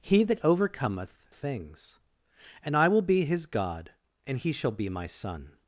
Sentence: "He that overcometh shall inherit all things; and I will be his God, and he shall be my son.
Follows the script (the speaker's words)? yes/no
no